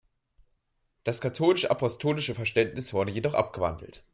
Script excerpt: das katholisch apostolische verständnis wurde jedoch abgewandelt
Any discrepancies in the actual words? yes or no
no